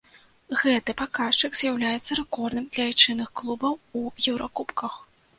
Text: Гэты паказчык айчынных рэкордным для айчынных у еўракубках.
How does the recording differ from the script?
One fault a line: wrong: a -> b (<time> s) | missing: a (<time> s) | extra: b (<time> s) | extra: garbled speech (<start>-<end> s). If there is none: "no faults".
wrong: айчынных -> з'яўляецца (1.6 s)
extra: клубаў (3.4 s)